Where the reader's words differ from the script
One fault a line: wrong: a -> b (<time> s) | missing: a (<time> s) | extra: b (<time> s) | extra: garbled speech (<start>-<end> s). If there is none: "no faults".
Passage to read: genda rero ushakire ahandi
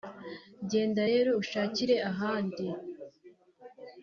no faults